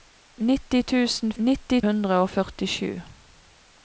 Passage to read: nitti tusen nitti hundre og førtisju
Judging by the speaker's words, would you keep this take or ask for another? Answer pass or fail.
pass